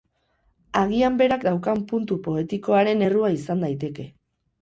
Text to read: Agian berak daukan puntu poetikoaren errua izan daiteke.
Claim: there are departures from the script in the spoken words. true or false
false